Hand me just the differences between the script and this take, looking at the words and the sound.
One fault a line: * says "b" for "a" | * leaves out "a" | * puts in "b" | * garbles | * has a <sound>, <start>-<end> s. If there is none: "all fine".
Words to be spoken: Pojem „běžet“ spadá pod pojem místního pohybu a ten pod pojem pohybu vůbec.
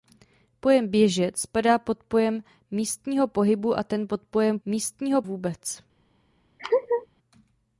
* says "místního" for "pohybu"
* has a laugh, 6.6-7.1 s